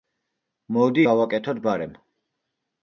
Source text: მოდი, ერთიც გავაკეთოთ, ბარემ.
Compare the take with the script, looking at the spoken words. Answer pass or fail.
fail